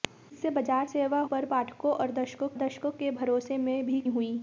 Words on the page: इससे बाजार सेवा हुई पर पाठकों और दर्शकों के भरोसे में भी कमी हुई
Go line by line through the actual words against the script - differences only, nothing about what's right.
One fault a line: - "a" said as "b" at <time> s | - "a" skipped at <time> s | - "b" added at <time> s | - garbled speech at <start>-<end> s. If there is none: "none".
- "हुई" skipped at 1.2 s
- "दर्शकों" added at 2.6 s
- "कमी" skipped at 4.0 s